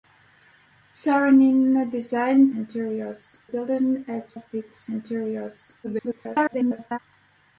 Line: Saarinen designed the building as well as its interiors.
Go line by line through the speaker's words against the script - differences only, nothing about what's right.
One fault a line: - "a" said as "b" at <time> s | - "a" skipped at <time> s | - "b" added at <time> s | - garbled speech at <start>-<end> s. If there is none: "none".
- "the" said as "interiors" at 2.5 s
- "well" skipped at 4.4 s
- garbled speech at 5.8-7.0 s